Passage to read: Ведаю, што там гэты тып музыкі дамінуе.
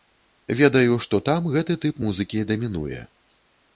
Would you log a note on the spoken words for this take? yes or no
no